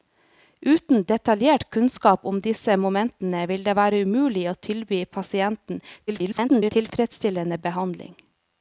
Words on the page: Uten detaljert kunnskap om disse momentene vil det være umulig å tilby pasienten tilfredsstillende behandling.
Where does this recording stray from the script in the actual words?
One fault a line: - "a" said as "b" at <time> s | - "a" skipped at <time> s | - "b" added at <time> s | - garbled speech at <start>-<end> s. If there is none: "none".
- garbled speech at 6.1-6.7 s